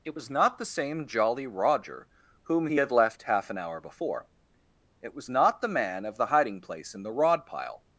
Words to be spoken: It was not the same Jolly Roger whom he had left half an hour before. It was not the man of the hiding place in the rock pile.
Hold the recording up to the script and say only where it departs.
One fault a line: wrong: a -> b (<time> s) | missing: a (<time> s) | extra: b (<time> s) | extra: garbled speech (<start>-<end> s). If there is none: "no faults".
wrong: rock -> rod (7.1 s)